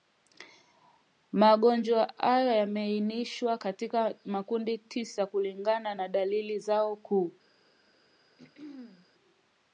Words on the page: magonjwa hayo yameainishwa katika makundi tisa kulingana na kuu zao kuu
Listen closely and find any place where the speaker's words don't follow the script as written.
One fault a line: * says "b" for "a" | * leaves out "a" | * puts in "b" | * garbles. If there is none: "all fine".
* says "dalili" for "kuu"